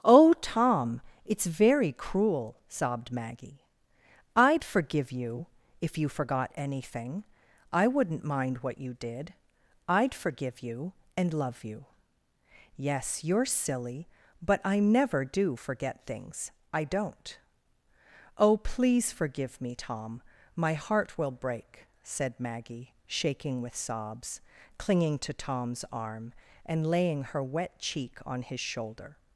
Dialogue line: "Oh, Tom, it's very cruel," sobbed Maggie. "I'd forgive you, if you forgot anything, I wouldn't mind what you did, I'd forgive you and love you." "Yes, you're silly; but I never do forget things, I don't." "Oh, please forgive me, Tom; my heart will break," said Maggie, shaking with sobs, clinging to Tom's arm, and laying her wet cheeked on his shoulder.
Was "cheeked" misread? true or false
true